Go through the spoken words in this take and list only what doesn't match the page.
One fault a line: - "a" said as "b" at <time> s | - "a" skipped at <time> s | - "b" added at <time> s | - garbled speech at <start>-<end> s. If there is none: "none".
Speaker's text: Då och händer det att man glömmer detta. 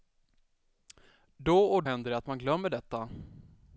none